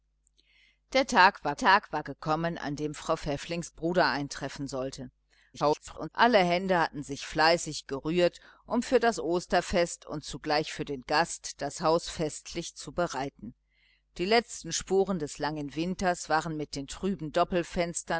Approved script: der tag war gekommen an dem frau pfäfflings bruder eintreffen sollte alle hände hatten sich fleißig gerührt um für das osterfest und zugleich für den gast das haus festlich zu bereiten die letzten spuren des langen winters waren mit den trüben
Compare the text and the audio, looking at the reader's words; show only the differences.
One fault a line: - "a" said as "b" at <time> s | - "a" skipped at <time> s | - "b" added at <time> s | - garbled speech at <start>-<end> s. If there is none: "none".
- "tag war" added at 1.6 s
- garbled speech at 5.5-6.1 s